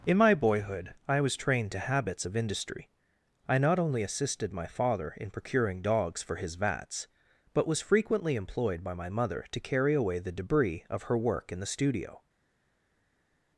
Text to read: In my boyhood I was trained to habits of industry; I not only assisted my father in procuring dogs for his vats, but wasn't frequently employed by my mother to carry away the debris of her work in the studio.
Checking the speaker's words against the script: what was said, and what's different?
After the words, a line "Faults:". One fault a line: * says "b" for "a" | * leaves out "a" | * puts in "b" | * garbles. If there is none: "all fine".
In my boyhood I was trained to habits of industry; I not only assisted my father in procuring dogs for his vats, but was frequently employed by my mother to carry away the debris of her work in the studio.
Faults:
* says "was" for "wasn't"